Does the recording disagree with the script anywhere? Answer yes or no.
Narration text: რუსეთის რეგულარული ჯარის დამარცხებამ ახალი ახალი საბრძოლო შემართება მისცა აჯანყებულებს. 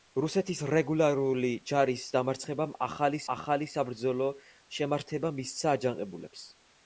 no